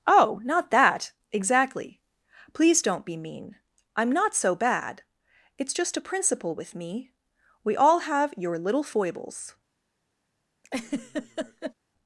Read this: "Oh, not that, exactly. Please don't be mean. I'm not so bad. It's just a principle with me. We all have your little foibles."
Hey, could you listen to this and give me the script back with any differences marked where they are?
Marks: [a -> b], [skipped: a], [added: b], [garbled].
"Oh, not that, exactly. Please don't be mean. I'm not so bad. It's just a principle with me. We all have your little foibles."